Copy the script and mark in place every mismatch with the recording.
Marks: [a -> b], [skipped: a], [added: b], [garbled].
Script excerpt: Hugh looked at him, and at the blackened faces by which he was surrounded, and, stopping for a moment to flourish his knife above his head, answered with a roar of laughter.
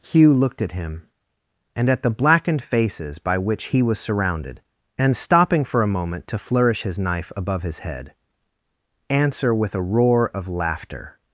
Hugh looked at him, and at the blackened faces by which he was surrounded, and, stopping for a moment to flourish his knife above his head, [answered -> answer] with a roar of laughter.